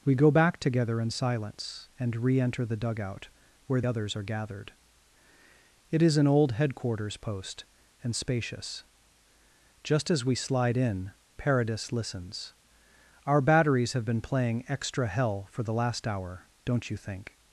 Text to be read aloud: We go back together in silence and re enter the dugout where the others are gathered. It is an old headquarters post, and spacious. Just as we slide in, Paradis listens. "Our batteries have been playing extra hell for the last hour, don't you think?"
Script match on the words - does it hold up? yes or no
no